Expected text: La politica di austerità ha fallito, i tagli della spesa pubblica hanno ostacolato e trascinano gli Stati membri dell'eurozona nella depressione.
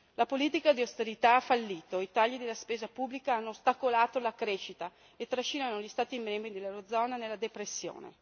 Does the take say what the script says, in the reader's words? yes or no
no